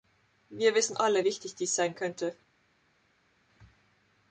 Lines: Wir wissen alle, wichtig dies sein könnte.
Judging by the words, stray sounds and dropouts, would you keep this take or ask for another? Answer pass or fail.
pass